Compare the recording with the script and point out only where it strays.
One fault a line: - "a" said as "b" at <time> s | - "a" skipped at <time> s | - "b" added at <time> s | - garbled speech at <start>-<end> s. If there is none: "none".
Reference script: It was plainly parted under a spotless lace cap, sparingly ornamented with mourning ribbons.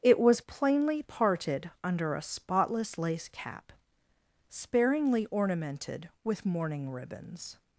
none